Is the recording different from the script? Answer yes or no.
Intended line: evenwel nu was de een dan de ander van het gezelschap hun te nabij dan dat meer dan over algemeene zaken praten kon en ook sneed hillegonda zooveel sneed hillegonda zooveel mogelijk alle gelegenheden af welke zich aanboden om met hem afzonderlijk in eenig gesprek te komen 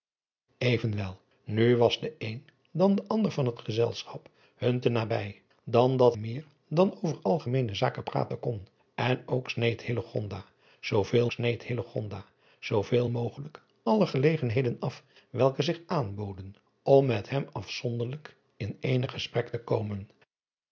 no